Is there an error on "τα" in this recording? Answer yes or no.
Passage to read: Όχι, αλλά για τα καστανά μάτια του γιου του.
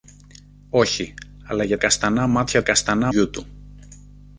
yes